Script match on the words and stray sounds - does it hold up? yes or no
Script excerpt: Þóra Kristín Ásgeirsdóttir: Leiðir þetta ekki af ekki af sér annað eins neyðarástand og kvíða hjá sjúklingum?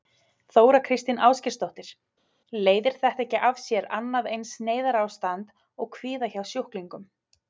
no